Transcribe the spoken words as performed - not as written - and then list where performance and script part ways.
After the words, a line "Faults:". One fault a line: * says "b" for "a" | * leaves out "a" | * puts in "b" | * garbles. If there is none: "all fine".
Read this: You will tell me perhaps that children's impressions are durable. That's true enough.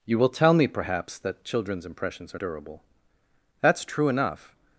You will tell me perhaps that children's impressions are durable. That's true enough.
Faults:
all fine